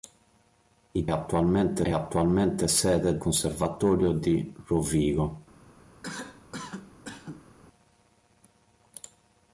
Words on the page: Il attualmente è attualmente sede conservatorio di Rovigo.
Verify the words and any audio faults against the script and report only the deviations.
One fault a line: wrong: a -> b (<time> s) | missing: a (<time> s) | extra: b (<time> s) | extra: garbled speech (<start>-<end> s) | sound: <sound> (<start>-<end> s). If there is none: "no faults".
sound: cough (6.0-7.5 s)